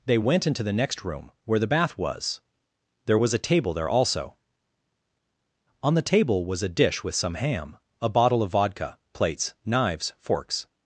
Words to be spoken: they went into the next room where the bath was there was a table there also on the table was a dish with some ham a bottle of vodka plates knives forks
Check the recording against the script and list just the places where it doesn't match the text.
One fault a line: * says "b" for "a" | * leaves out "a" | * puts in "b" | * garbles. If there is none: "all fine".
all fine